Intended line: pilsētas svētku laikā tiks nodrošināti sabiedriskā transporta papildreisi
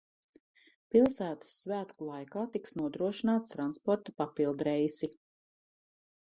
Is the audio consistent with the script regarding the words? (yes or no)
no